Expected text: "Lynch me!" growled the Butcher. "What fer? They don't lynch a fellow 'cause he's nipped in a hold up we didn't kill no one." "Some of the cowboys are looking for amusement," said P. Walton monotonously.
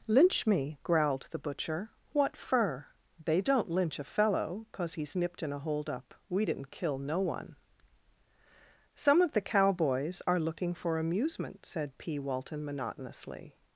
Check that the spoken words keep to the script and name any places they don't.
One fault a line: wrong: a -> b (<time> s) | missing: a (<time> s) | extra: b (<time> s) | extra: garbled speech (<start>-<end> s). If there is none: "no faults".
no faults